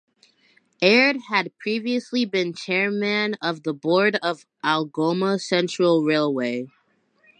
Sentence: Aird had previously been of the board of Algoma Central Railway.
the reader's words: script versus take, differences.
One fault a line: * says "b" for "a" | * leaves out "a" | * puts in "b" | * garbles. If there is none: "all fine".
* puts in "chairman"